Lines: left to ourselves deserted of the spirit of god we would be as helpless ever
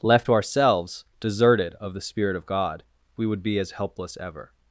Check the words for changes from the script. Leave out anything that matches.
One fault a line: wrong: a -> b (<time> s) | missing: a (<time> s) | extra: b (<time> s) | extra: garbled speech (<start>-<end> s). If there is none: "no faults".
no faults